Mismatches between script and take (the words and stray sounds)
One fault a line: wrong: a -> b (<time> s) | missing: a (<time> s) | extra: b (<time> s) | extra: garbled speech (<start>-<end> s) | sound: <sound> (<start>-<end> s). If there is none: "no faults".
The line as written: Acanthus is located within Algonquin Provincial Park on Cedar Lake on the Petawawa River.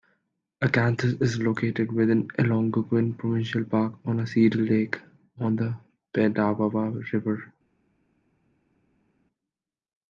no faults